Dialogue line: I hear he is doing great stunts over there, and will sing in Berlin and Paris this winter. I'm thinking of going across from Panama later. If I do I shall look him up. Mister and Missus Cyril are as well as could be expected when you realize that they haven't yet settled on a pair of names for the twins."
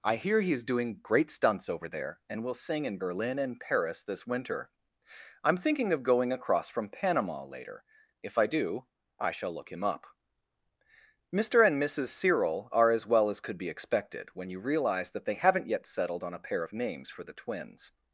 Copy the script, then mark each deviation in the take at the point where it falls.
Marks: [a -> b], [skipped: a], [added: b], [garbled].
I hear he is doing great stunts over there, and will sing in Berlin and Paris this winter. I'm thinking of going across from Panama later. If I do I shall look him up. Mister and Missus Cyril are as well as could be expected when you realize that they haven't yet settled on a pair of names for the twins."